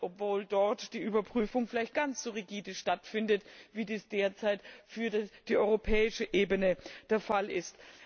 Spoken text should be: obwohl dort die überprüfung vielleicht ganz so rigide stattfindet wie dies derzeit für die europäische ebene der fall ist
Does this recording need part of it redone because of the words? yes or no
no